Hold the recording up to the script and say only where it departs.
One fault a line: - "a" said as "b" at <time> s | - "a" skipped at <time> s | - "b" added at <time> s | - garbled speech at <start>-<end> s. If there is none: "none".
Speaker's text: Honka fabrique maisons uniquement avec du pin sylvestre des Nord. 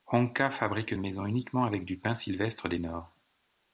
none